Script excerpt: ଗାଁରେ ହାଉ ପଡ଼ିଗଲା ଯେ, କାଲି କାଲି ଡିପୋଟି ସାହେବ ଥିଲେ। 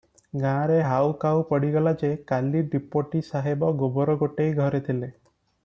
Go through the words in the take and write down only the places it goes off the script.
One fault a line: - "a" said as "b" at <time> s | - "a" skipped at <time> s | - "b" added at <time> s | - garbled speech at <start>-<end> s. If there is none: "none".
- "କାଉ" added at 1.2 s
- "କାଲି" skipped at 2.6 s
- "ଗୋବର ଗୋଟେଇ ଘରେ" added at 3.8 s